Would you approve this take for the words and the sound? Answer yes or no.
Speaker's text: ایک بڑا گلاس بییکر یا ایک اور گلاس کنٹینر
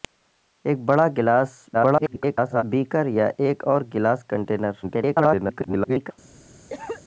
no